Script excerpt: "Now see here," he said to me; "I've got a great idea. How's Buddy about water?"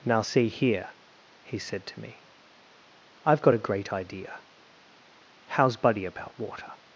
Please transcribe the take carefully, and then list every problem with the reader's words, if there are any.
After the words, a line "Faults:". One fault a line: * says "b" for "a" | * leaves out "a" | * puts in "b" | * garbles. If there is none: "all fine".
"Now see here," he said to me; "I've got a great idea. How's Buddy about water?"
Faults:
all fine